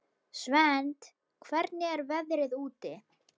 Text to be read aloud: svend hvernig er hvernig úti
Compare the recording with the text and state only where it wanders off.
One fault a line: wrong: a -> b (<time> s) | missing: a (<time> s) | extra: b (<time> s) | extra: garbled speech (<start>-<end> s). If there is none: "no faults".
wrong: hvernig -> veðrið (2.1 s)